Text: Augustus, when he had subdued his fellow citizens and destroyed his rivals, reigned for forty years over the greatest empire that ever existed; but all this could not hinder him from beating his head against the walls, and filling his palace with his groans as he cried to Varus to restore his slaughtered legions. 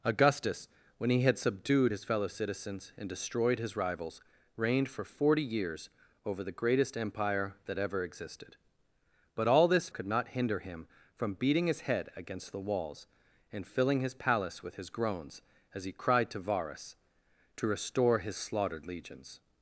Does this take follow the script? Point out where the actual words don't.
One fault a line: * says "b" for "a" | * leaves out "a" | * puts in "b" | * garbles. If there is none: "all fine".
all fine